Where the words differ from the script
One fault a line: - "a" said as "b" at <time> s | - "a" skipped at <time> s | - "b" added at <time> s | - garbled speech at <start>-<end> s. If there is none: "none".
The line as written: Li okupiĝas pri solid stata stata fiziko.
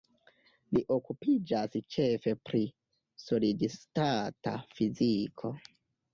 - "ĉefe" added at 2.0 s
- "stata" skipped at 4.6 s